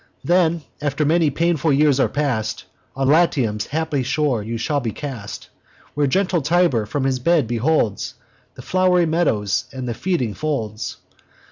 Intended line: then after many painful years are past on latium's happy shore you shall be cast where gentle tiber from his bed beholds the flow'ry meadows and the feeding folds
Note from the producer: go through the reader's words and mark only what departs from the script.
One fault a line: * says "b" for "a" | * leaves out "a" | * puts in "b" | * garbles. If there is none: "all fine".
all fine